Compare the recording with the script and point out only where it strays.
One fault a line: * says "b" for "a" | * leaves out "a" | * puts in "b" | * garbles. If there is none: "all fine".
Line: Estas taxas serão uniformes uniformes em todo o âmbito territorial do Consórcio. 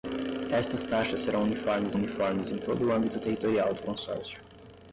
all fine